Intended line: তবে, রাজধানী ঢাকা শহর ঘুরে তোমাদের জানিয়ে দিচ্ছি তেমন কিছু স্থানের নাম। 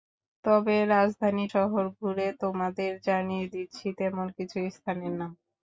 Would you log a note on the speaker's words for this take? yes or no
yes